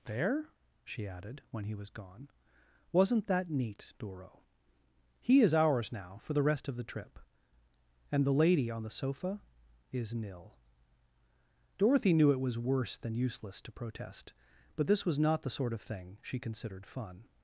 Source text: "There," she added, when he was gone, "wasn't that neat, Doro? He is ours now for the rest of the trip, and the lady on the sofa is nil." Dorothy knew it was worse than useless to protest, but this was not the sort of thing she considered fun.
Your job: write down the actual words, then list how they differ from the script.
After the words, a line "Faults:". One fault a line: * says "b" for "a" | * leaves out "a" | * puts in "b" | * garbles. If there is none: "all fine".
"There," she added, when he was gone, "wasn't that neat, Doro? He is ours now for the rest of the trip, and the lady on the sofa is nil." Dorothy knew it was worse than useless to protest, but this was not the sort of thing she considered fun.
Faults:
all fine